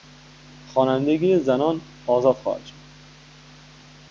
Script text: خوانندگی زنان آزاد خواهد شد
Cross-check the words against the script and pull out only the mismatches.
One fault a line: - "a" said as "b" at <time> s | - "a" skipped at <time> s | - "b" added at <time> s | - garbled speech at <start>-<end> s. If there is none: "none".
none